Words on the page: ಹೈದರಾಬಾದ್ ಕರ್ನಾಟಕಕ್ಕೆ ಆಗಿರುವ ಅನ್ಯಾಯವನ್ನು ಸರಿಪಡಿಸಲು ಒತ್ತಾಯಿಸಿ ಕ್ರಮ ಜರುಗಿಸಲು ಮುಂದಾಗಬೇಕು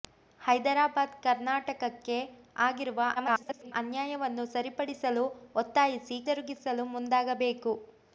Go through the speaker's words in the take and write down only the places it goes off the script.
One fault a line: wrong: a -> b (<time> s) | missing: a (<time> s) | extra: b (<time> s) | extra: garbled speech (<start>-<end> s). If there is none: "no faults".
extra: garbled speech (3.2-3.7 s)
missing: ಕ್ರಮ (6.2 s)